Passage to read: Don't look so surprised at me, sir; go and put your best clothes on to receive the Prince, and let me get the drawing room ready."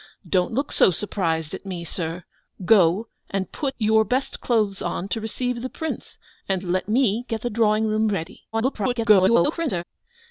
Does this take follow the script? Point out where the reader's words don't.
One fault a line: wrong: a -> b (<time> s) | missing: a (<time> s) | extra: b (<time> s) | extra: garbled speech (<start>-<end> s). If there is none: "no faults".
extra: garbled speech (8.5-9.8 s)